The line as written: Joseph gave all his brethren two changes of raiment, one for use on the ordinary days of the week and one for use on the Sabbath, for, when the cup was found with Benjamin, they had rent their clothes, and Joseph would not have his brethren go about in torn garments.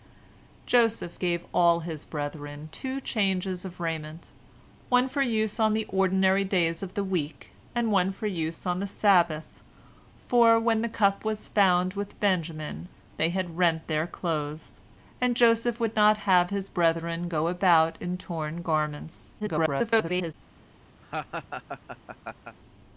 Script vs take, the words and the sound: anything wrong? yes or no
yes